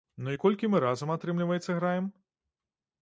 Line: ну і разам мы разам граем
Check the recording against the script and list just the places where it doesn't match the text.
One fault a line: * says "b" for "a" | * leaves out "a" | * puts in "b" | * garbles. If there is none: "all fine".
* says "колькі" for "разам"
* puts in "атрымліваецца"